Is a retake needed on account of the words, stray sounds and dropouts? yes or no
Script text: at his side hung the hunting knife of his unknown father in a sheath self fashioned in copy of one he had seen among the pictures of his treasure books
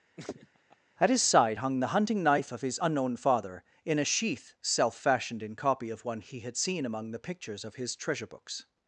yes